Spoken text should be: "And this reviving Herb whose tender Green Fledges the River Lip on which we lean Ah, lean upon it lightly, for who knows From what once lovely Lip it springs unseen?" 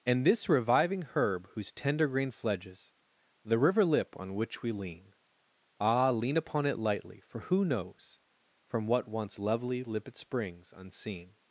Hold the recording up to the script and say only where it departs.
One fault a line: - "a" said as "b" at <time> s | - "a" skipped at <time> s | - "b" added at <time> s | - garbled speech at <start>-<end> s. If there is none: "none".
none